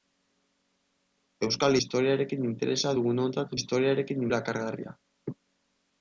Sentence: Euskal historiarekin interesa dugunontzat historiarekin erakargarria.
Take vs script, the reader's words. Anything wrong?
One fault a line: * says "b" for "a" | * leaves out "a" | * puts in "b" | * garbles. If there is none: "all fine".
all fine